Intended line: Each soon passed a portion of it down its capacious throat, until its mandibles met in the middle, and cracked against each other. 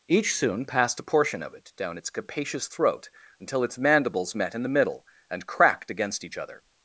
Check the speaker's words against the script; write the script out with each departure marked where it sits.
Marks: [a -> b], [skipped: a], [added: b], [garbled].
Each soon passed a portion of it down its capacious throat, until its mandibles met in the middle, and cracked against each other.